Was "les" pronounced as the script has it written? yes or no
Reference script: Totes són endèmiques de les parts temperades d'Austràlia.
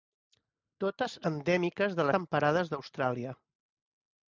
no